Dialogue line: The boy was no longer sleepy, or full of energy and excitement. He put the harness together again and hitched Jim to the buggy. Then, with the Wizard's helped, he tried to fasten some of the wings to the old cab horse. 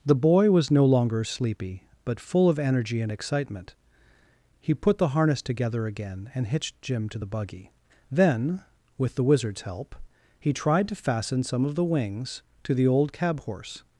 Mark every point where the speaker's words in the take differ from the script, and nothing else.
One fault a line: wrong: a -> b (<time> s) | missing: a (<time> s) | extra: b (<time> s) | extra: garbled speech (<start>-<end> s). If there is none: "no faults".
wrong: or -> but (2.0 s)
wrong: helped -> help (9.6 s)